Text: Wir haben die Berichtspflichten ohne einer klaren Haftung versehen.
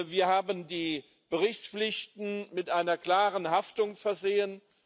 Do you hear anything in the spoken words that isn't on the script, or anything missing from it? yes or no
yes